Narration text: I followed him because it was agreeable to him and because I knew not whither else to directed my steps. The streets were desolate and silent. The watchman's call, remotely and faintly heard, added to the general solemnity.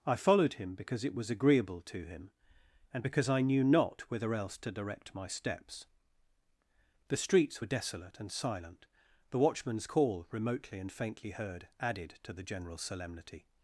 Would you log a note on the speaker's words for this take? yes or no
yes